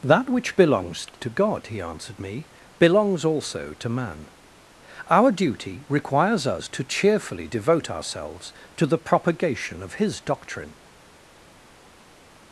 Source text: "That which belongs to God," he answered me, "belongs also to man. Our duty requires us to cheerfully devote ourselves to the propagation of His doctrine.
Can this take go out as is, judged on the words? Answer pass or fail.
pass